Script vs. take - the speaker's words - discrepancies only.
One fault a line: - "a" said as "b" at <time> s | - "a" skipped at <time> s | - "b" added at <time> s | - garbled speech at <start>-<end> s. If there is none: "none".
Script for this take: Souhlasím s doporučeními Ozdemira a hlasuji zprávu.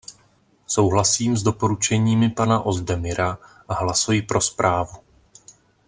- "pana" added at 2.3 s
- "pro" added at 4.2 s